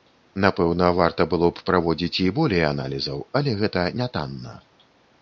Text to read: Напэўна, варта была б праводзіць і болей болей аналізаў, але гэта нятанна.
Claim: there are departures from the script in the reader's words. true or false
true